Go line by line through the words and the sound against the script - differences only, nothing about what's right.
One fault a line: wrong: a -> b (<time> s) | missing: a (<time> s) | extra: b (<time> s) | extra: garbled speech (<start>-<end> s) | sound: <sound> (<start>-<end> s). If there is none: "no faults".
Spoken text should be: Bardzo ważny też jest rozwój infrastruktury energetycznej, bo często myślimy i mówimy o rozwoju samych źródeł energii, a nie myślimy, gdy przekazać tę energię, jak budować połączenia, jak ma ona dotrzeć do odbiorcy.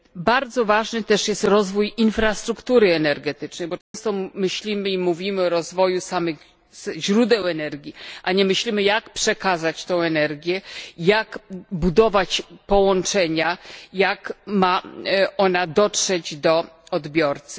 sound: dropout (3.8-3.9 s)
wrong: gdy -> jak (8.8 s)